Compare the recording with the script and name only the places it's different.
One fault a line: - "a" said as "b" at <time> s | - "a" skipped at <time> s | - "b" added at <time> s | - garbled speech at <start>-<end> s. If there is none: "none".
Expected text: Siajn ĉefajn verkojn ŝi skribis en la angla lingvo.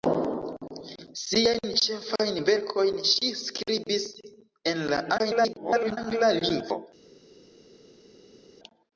- garbled speech at 5.2-6.0 s